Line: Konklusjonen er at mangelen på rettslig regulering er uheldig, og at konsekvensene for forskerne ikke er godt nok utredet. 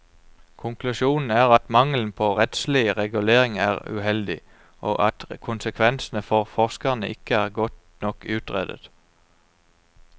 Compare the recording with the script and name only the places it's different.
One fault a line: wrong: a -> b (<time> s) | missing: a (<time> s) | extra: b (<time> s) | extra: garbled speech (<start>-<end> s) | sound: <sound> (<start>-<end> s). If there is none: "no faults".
no faults